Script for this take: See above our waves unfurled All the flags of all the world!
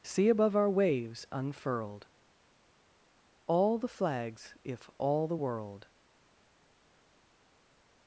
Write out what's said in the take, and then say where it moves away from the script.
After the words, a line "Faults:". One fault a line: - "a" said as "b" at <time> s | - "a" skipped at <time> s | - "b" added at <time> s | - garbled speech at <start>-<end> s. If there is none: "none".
See above our waves unfurled All the flags if all the world!
Faults:
- "of" said as "if" at 4.6 s